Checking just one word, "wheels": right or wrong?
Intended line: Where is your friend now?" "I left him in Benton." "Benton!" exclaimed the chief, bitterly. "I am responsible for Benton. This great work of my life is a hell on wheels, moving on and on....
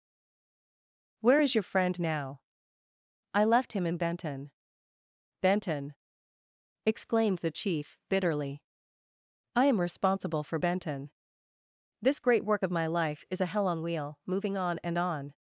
wrong